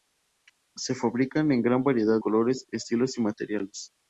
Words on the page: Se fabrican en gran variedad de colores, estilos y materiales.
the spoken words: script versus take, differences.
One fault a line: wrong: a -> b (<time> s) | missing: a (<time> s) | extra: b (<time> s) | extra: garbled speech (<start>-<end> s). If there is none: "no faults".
missing: de (2.2 s)